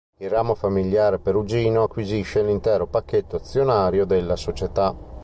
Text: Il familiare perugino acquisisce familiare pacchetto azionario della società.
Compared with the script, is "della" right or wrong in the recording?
right